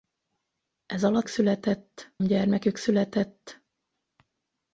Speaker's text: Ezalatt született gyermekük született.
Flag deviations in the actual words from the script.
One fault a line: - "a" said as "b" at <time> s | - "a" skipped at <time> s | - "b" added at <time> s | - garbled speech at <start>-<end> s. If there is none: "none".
none